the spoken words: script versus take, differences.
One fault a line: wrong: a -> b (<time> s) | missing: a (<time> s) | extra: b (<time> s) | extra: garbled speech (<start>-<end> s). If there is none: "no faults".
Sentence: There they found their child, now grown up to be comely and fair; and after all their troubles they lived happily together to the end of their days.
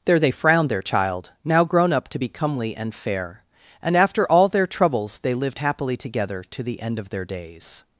wrong: found -> frowned (0.3 s)